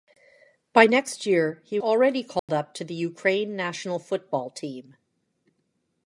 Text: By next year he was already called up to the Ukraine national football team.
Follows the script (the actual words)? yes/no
no